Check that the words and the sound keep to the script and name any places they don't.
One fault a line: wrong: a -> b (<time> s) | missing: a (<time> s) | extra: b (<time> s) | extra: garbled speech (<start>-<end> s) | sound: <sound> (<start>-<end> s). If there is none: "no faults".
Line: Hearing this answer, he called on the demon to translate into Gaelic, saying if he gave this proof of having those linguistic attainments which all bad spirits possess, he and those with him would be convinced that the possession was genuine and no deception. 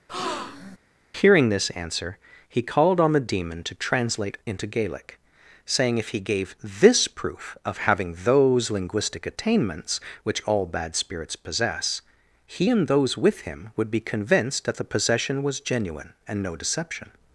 sound: breath (0.1-0.8 s)